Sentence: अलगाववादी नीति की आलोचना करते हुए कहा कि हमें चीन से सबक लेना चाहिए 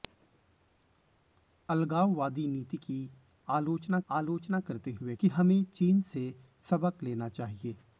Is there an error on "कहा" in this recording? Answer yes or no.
yes